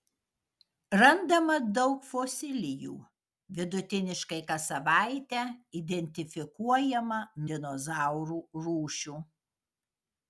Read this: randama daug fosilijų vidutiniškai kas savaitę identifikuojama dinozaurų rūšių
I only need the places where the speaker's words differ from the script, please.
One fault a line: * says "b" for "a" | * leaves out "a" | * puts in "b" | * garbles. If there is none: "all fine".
all fine